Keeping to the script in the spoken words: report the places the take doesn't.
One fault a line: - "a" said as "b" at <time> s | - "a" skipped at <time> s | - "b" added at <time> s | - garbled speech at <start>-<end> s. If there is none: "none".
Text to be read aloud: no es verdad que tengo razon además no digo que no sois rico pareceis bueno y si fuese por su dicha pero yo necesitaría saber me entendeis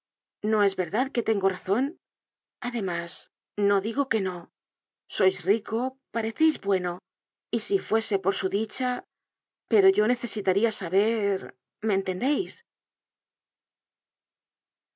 none